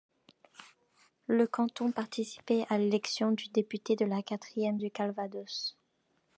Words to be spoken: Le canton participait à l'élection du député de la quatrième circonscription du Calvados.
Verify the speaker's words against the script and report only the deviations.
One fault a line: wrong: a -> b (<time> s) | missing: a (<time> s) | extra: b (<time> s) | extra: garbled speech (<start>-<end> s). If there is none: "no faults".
missing: circonscription (4.8 s)